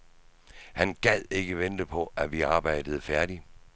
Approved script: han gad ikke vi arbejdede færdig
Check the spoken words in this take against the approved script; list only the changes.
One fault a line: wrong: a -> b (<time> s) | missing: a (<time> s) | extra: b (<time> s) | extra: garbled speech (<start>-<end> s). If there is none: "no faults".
extra: vente på at (1.6 s)